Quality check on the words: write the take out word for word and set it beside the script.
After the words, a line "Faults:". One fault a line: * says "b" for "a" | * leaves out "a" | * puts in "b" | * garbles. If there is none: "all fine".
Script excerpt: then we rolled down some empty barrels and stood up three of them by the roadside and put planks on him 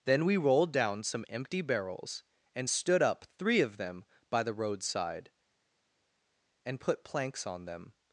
then we rolled down some empty barrels and stood up three of them by the roadside and put planks on them
Faults:
* says "them" for "him"